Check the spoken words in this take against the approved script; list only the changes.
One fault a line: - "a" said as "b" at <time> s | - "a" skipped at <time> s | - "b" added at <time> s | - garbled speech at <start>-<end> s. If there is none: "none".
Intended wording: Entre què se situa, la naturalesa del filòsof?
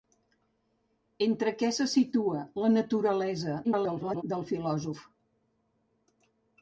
- garbled speech at 3.6-4.2 s